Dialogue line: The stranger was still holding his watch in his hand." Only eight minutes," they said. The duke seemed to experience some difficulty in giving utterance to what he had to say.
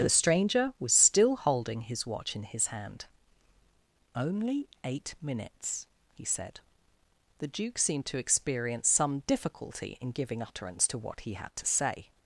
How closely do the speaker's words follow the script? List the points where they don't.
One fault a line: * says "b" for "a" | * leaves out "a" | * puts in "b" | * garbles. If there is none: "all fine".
* says "he" for "they"